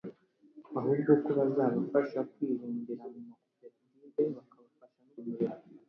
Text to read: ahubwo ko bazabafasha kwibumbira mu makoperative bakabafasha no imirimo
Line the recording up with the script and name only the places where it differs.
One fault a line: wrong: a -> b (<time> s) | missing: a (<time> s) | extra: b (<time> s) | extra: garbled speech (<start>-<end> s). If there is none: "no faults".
no faults